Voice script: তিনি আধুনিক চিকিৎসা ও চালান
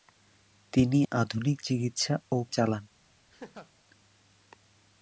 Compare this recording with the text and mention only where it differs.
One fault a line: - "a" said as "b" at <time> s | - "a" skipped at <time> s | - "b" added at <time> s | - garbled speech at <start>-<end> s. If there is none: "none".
none